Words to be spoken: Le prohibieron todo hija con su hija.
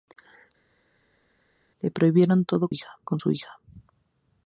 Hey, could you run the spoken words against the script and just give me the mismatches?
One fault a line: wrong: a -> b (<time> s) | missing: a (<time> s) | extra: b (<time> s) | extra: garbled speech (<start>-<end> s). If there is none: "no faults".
no faults